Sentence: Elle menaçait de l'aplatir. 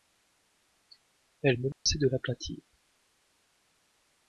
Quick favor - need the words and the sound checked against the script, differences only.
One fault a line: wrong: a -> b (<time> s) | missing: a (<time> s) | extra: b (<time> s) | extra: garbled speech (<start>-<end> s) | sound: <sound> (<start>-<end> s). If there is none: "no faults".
sound: dropout (1.7-1.9 s)